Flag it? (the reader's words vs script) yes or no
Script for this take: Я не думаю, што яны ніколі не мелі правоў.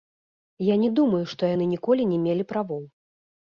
no